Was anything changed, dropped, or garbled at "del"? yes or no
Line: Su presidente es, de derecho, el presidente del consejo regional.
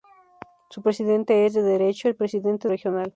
yes